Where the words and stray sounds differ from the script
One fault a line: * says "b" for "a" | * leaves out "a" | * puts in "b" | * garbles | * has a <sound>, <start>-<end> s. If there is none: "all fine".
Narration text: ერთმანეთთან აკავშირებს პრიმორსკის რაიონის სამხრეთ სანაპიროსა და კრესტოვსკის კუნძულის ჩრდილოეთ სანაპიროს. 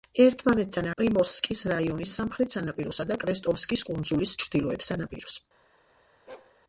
* leaves out "აკავშირებს"
* has a bark, 6.3-6.6 s